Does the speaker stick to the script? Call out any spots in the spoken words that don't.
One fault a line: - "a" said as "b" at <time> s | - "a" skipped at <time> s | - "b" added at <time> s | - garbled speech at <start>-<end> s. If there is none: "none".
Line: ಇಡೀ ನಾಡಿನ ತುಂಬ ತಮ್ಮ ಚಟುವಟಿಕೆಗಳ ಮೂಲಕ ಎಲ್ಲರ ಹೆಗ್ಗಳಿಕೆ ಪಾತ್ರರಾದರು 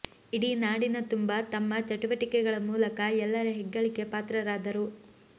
none